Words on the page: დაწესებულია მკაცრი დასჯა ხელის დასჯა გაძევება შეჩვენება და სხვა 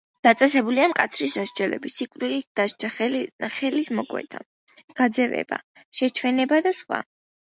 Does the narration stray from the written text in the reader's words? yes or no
yes